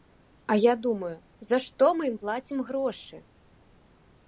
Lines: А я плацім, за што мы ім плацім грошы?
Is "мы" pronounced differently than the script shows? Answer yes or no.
no